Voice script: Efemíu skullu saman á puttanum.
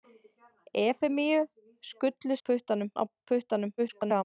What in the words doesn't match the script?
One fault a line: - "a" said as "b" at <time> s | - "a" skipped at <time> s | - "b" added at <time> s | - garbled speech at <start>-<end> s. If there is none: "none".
- "saman" said as "puttanum" at 2.4 s
- garbled speech at 3.8-4.2 s